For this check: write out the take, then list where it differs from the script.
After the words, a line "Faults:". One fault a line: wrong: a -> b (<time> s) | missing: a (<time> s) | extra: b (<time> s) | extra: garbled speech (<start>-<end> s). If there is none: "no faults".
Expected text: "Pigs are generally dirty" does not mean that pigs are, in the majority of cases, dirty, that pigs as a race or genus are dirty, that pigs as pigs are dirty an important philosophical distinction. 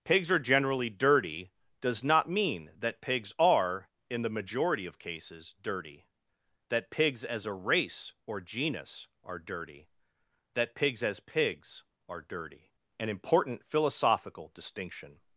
"Pigs are generally dirty" does not mean that pigs are, in the majority of cases, dirty, that pigs as a race or genus are dirty, that pigs as pigs are dirty an important philosophical distinction.
Faults:
no faults